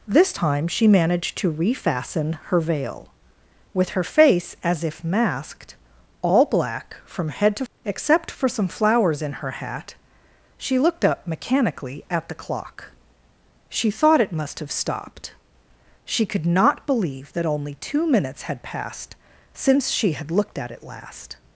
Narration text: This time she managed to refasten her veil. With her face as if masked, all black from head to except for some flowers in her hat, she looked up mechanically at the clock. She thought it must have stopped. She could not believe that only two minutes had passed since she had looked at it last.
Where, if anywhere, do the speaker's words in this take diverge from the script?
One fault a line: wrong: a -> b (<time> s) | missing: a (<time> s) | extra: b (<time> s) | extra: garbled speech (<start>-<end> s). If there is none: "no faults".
no faults